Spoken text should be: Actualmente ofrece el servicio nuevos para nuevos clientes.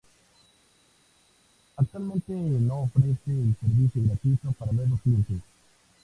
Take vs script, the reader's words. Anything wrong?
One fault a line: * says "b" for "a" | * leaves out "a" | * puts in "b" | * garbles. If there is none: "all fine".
* puts in "no"
* says "gratuito" for "nuevos"